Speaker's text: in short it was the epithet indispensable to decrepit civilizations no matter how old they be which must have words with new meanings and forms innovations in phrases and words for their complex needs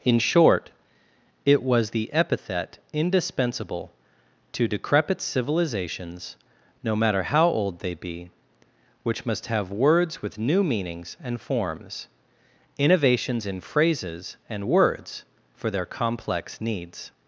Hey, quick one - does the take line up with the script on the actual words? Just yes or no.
yes